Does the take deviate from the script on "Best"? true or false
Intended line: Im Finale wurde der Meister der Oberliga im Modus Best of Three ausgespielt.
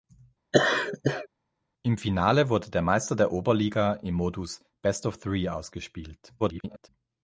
false